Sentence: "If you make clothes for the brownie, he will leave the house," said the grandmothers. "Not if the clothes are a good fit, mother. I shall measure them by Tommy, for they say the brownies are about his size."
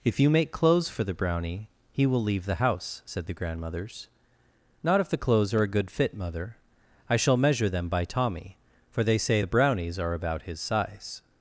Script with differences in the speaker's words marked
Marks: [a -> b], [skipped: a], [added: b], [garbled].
"If you make clothes for the brownie, he will leave the house," said the grandmothers. "Not if the clothes are a good fit, mother. I shall measure them by Tommy, for they say the brownies are about his size."